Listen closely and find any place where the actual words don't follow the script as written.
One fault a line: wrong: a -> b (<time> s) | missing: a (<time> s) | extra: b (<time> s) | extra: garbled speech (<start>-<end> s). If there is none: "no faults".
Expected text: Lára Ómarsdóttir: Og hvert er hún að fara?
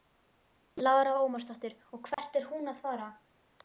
no faults